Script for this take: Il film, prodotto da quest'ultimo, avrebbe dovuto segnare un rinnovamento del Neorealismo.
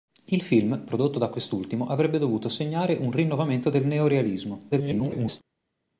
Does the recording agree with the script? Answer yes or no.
no